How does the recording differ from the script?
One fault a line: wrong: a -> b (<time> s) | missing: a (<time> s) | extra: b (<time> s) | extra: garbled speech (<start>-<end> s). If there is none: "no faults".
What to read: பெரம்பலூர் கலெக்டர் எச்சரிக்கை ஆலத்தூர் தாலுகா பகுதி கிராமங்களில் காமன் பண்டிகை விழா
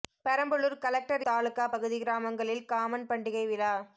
missing: எச்சரிக்கை ஆலத்தூர் (1.2 s)